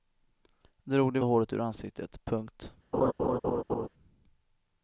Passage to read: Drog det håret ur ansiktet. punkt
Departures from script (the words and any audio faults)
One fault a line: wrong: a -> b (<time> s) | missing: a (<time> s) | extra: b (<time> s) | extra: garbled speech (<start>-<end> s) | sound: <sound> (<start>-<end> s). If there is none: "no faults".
sound: laugh (2.9-3.9 s)